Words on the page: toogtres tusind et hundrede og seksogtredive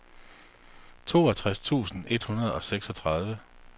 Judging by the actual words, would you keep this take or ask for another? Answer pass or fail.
pass